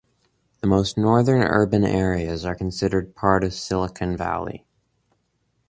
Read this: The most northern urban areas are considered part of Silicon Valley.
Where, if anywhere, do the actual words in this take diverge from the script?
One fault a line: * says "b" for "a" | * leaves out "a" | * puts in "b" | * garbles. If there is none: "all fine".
all fine